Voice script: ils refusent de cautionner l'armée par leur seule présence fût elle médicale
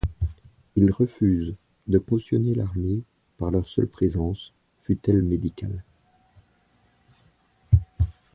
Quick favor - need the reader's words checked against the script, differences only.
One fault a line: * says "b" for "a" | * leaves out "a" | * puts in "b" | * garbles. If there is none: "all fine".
all fine